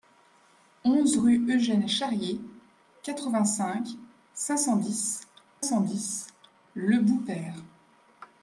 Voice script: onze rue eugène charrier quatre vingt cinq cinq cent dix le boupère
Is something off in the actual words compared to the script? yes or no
yes